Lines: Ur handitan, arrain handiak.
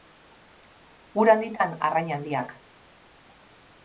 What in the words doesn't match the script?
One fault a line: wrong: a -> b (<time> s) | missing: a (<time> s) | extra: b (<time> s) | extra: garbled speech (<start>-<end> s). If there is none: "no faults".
no faults